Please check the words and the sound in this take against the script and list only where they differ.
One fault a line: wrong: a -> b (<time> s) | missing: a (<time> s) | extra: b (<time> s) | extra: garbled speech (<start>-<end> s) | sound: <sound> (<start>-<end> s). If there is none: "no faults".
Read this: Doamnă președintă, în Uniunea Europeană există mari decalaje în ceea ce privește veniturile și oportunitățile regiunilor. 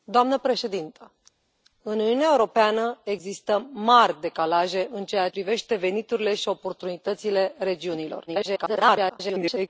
missing: ce (5.3 s)
extra: garbled speech (8.3-9.7 s)